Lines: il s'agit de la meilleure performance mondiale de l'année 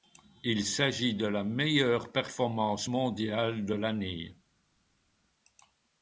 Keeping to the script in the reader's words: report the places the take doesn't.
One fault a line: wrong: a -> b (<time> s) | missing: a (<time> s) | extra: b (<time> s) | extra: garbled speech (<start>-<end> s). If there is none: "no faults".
no faults